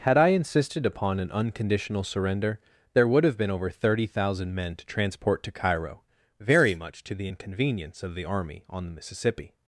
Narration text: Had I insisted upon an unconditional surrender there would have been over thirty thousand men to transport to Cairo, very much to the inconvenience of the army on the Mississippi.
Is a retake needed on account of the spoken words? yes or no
no